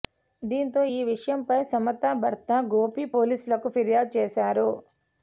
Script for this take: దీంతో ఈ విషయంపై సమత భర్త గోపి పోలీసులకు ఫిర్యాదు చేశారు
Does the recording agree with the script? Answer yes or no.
yes